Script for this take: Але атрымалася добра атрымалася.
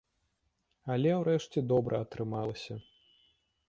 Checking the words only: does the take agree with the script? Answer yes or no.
no